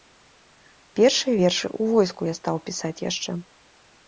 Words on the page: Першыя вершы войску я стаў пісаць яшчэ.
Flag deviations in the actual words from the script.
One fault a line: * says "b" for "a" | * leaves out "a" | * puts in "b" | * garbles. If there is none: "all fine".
* puts in "ў"